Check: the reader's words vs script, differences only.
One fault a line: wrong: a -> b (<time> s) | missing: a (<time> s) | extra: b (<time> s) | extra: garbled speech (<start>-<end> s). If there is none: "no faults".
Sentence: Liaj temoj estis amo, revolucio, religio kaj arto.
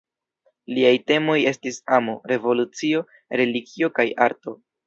no faults